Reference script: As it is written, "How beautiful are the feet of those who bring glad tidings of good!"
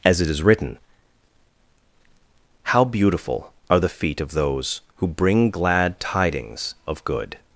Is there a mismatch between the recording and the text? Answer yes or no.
no